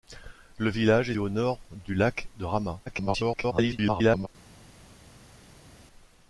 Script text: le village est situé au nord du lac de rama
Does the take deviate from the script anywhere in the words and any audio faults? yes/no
yes